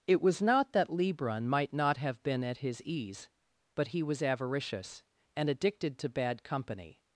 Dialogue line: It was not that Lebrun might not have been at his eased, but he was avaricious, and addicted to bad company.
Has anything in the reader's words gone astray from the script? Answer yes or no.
yes